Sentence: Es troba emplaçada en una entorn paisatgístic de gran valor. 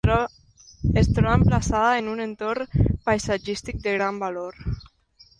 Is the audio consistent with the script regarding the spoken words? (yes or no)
no